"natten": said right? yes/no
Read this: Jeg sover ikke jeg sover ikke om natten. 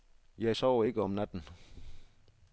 yes